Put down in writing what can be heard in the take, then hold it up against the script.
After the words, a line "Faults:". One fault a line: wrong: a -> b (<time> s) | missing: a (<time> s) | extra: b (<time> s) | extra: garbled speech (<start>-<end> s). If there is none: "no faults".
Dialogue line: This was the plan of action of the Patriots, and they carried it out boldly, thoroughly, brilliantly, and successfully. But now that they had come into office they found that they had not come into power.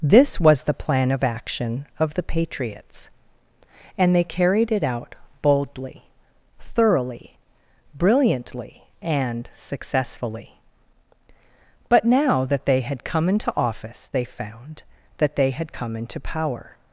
This was the plan of action of the Patriots, and they carried it out boldly, thoroughly, brilliantly, and successfully. But now that they had come into office they found that they had come into power.
Faults:
missing: not (15.7 s)